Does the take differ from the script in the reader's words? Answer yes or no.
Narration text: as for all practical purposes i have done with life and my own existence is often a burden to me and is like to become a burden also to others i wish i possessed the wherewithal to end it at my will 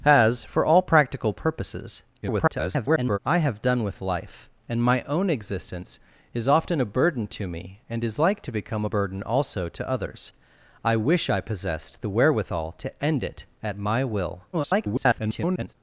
yes